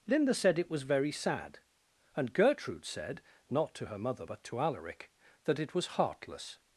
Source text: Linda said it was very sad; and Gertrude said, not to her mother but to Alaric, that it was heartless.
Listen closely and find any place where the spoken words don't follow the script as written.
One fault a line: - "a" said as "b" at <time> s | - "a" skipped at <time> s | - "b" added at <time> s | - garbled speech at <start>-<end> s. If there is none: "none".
none